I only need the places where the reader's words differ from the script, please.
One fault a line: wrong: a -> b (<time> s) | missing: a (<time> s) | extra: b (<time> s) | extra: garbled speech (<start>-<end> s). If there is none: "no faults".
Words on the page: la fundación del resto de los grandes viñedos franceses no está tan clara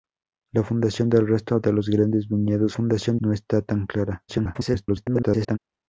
wrong: franceses -> fundación (2.7 s)
extra: garbled speech (4.3-5.6 s)